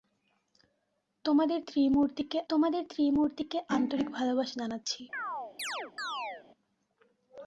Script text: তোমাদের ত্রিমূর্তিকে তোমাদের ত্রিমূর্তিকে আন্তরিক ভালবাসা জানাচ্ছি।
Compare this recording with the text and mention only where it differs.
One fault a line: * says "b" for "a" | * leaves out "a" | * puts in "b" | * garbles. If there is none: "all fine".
all fine